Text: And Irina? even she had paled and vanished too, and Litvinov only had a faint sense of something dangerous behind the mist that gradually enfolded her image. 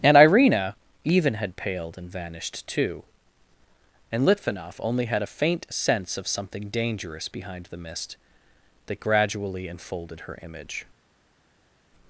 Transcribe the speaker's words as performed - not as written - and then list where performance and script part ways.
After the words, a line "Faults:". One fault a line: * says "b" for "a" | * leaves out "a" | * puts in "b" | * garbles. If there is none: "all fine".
And Irina? even had paled and vanished too, and Litvinov only had a faint sense of something dangerous behind the mist that gradually enfolded her image.
Faults:
* leaves out "she"